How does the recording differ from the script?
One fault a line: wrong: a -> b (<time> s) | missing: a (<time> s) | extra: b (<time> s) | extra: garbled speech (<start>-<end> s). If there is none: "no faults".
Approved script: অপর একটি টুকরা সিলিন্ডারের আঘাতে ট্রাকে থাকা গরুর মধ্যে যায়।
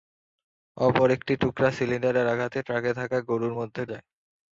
no faults